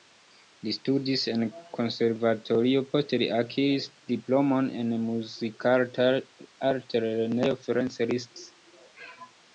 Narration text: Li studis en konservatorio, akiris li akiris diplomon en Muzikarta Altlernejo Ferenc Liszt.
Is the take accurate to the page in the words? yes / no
no